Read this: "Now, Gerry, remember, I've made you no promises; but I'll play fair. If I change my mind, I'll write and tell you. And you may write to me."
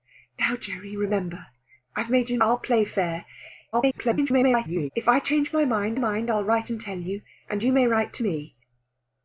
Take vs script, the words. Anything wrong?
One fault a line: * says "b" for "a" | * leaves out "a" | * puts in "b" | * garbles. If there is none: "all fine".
* leaves out "no promises but"
* garbles
* puts in "mind"